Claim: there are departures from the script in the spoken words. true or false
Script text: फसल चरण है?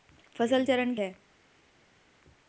false